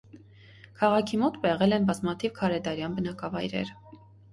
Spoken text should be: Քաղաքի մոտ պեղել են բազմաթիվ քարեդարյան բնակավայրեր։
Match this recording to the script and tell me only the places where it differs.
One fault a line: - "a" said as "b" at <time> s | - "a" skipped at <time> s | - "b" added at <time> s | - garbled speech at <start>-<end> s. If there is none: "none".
none